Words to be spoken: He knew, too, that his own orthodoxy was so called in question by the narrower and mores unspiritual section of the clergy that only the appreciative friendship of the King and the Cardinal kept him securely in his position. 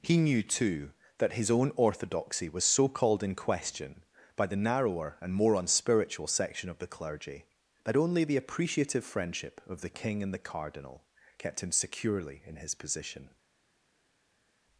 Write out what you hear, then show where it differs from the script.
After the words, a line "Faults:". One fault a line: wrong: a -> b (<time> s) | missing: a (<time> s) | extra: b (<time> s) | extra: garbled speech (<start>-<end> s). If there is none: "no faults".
He knew, too, that his own orthodoxy was so called in question by the narrower and more unspiritual section of the clergy that only the appreciative friendship of the King and the Cardinal kept him securely in his position.
Faults:
wrong: mores -> more (5.3 s)